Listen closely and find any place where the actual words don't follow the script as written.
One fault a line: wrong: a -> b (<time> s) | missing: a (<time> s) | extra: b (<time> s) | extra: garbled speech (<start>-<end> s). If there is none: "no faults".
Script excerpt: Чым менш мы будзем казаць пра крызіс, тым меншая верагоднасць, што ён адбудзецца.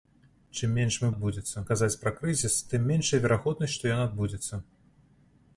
wrong: будзем -> адбудзецца (1.1 s)